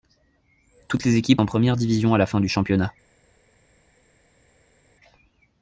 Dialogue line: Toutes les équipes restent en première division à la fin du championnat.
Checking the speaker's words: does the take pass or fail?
fail